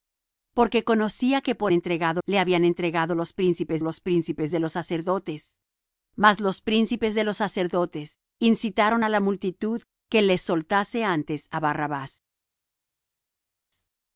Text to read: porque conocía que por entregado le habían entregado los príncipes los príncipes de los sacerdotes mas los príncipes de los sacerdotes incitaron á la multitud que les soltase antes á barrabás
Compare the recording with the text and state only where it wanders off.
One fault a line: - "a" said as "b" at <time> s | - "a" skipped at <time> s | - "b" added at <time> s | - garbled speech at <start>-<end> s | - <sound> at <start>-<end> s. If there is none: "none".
none